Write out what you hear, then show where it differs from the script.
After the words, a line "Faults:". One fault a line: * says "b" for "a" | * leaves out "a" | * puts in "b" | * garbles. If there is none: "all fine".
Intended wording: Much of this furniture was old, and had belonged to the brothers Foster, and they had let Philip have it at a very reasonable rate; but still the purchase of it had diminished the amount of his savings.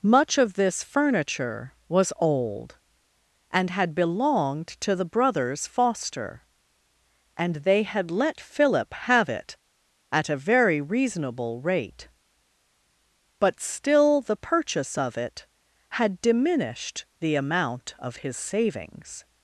Much of this furniture was old, and had belonged to the brothers Foster, and they had let Philip have it at a very reasonable rate; but still the purchase of it had diminished the amount of his savings.
Faults:
all fine